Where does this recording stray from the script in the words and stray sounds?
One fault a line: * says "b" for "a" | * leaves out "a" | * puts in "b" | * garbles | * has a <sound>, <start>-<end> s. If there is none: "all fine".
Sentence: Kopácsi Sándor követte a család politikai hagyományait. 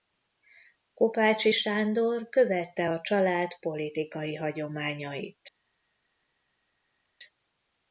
all fine